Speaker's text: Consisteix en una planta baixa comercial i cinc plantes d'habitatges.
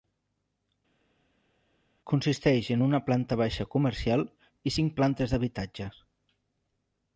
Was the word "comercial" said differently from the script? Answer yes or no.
no